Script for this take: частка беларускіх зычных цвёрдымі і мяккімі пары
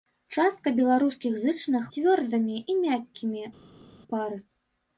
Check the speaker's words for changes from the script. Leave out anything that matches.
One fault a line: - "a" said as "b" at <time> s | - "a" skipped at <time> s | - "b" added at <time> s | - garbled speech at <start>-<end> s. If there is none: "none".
none